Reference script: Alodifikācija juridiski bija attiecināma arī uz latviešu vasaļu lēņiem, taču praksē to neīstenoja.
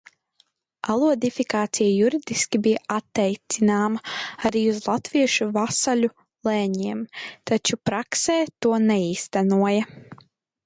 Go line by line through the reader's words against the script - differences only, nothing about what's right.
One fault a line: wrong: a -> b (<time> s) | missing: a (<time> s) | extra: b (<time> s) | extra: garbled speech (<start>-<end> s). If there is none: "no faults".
no faults